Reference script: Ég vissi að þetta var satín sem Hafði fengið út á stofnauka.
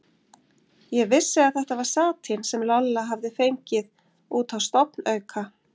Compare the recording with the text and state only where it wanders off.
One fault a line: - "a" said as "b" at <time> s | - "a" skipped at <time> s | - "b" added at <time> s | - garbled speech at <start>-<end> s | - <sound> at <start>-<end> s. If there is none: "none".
- "Lolla" added at 2.7 s